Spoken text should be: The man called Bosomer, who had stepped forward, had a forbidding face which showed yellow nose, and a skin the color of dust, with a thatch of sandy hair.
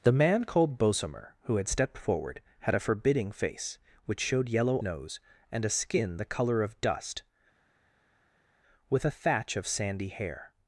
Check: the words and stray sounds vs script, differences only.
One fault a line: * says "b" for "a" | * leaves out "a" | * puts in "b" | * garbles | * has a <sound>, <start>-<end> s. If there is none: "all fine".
all fine